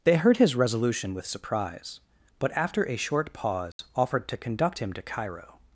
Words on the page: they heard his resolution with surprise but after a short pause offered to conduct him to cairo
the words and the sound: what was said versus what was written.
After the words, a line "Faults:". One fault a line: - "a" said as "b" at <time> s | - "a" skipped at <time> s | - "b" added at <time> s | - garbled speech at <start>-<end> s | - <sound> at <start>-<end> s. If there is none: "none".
they heard his resolution with surprise but after a short pause offered to conduct him to cairo
Faults:
- dropout at 3.7-3.8 s